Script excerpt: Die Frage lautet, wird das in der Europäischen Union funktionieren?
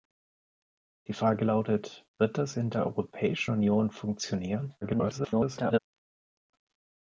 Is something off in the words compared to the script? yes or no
yes